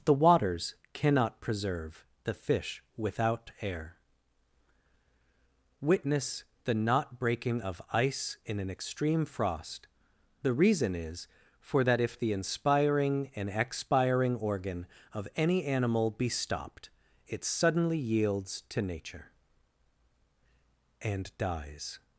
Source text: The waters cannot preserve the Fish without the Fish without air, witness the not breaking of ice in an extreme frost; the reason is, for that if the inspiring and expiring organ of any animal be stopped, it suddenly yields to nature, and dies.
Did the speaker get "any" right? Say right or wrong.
right